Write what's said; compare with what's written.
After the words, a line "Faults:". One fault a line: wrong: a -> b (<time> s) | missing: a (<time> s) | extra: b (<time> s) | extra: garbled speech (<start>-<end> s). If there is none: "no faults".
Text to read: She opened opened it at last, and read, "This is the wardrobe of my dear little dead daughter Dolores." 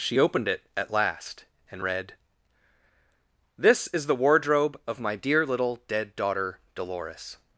She opened it at last, and read, "This is the wardrobe of my dear little dead daughter Dolores."
Faults:
missing: opened (0.5 s)